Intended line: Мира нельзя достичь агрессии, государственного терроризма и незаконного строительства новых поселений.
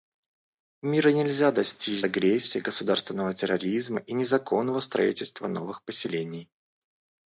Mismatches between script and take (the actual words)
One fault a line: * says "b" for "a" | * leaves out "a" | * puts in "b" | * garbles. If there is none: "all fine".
all fine